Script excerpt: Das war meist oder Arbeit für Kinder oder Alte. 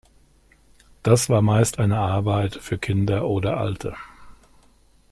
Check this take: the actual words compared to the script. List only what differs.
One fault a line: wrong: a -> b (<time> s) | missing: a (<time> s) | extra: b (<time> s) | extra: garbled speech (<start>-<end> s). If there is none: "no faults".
wrong: oder -> eine (1.8 s)